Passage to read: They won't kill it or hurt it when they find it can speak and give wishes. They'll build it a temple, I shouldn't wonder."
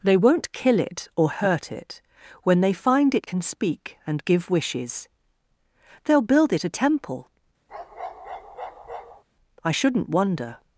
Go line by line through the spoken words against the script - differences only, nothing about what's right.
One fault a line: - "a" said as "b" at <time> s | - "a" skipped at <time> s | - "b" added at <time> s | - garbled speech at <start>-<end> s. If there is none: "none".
none